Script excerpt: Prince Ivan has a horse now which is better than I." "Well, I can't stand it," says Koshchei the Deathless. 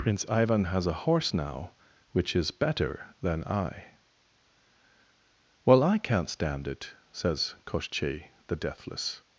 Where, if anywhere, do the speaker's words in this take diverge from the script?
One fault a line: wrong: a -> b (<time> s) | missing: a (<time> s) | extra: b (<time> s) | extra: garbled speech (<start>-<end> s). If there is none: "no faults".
no faults